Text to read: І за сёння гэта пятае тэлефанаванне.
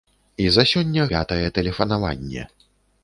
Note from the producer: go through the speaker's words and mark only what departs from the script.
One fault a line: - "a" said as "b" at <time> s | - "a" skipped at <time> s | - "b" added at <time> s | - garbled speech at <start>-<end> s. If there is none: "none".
- "гэта" skipped at 1.1 s